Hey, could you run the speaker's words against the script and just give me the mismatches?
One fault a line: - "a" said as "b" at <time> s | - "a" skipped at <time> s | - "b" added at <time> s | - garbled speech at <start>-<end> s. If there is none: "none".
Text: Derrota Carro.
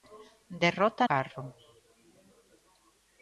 none